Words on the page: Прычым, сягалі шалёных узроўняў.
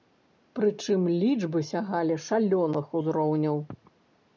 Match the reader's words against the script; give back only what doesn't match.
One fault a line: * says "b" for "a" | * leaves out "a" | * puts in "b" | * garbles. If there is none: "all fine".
* puts in "лічбы"